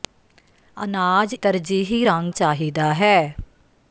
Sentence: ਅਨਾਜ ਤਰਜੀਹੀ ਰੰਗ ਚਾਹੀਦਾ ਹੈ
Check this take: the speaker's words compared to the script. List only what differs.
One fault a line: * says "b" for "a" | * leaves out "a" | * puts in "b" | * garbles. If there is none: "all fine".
all fine